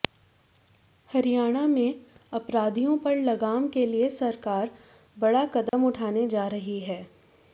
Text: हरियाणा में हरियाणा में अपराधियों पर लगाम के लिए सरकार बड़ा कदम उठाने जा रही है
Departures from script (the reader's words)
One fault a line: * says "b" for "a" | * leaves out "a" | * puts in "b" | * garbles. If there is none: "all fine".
* leaves out "हरियाणा में"